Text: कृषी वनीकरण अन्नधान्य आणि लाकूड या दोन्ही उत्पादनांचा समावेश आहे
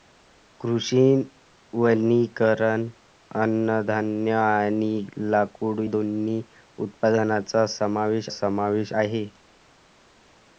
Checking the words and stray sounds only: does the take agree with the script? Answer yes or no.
no